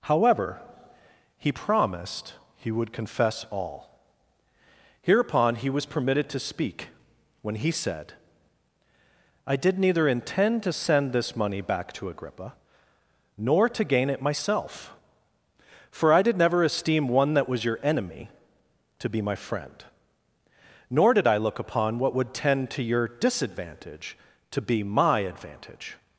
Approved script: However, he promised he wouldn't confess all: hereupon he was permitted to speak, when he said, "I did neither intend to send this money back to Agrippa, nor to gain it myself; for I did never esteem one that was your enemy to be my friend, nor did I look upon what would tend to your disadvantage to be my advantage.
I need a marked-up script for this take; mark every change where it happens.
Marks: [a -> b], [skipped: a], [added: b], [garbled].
However, he promised he [wouldn't -> would] confess all: hereupon he was permitted to speak, when he said, "I did neither intend to send this money back to Agrippa, nor to gain it myself; for I did never esteem one that was your enemy to be my friend, nor did I look upon what would tend to your disadvantage to be my advantage.